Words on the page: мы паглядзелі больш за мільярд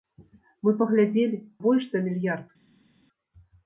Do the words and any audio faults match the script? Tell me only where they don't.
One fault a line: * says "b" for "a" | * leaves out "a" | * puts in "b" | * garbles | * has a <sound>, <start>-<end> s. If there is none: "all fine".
all fine